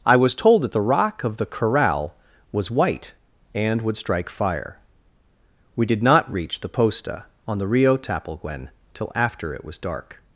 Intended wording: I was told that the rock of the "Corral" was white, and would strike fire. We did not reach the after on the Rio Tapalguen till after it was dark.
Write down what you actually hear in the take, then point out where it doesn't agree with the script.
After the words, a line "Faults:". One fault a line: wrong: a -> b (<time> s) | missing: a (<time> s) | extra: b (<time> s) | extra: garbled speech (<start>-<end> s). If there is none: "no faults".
I was told that the rock of the "Corral" was white, and would strike fire. We did not reach the posta on the Rio Tapalguen till after it was dark.
Faults:
wrong: after -> posta (6.7 s)